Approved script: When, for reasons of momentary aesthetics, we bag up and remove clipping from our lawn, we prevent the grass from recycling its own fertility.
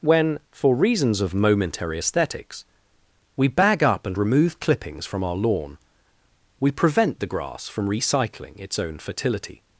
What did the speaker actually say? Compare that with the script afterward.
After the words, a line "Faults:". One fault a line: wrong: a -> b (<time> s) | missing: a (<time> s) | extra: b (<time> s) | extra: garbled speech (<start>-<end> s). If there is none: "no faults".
When, for reasons of momentary aesthetics, we bag up and remove clippings from our lawn, we prevent the grass from recycling its own fertility.
Faults:
wrong: clipping -> clippings (4.6 s)